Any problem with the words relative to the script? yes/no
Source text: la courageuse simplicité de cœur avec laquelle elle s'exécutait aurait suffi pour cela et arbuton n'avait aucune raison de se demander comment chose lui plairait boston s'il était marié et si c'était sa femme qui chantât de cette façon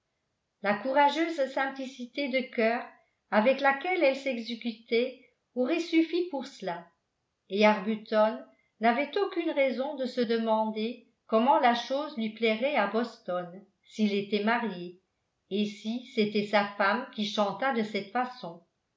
yes